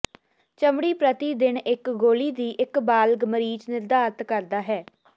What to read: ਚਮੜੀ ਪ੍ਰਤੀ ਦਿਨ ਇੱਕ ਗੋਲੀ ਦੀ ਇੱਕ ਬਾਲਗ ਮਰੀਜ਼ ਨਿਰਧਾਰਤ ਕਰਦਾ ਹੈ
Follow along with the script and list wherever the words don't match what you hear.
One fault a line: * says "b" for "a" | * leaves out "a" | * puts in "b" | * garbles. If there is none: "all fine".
all fine